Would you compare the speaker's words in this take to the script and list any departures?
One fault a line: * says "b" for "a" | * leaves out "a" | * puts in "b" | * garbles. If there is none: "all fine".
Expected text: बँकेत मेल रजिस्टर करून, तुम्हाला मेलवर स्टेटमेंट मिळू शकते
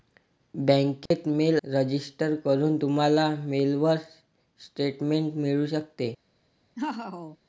all fine